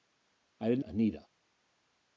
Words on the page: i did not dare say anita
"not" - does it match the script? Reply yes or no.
no